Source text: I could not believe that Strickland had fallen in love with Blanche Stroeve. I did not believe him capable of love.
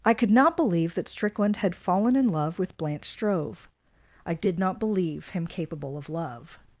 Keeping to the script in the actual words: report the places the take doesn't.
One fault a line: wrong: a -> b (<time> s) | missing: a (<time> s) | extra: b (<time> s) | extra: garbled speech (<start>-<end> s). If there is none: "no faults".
no faults